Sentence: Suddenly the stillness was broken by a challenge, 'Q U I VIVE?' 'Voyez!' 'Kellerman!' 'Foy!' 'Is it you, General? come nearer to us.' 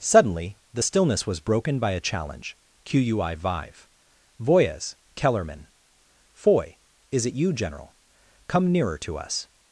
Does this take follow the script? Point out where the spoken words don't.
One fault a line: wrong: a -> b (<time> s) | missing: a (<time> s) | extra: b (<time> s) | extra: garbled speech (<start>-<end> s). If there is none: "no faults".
no faults